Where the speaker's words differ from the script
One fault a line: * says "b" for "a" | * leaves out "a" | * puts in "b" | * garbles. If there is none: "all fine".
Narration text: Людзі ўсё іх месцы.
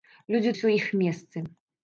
all fine